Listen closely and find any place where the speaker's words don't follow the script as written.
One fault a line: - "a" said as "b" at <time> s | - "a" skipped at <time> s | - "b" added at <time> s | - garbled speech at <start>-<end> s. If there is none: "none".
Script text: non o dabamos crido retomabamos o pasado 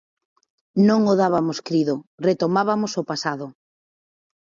none